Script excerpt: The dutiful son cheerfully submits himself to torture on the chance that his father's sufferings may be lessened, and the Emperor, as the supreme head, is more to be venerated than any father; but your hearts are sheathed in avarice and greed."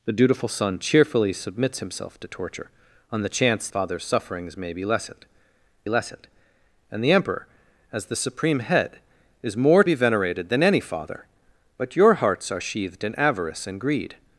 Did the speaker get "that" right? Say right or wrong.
wrong